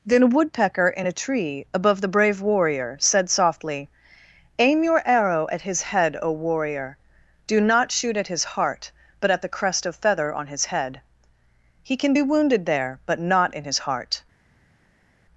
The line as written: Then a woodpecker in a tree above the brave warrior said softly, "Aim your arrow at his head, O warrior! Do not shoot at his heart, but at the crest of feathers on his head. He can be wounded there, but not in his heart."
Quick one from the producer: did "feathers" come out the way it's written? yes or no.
no